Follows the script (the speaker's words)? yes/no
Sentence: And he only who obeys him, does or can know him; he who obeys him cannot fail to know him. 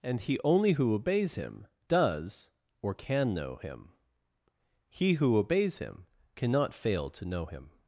yes